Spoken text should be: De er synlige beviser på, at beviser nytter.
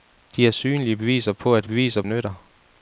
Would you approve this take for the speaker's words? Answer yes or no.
yes